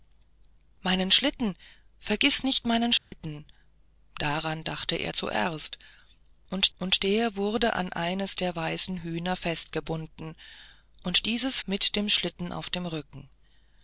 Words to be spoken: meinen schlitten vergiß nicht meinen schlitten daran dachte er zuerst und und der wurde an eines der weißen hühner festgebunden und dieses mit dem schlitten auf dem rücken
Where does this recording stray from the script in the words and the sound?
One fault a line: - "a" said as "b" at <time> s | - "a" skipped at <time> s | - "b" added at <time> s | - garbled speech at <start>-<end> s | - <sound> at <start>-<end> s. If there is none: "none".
- dropout at 3.0-3.1 s